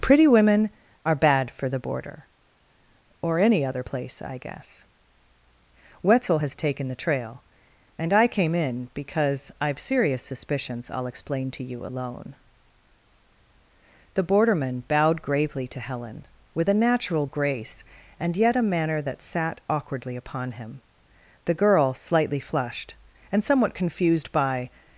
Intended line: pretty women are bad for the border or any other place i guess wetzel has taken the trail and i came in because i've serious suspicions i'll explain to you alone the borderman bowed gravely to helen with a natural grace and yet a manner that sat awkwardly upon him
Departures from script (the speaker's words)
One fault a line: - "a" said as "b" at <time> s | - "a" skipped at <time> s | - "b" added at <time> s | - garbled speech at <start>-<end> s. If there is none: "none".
- "the girl slightly flushed and somewhat confused by" added at 21.5 s